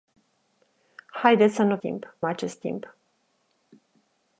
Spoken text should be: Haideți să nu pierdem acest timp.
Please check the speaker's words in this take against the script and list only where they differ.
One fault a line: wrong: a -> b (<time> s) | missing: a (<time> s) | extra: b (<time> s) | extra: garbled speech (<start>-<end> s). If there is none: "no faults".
wrong: pierdem -> timp (1.8 s)